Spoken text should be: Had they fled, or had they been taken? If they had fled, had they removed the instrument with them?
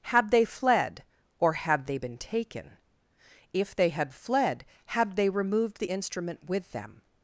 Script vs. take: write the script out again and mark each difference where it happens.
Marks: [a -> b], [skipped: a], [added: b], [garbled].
Had they fled, or had they been taken? If they had fled, had they removed the instrument with them?